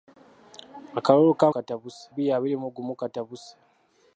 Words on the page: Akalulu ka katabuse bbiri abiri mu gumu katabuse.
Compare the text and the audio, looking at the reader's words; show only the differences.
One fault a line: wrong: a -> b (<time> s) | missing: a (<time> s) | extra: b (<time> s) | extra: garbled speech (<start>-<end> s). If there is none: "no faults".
no faults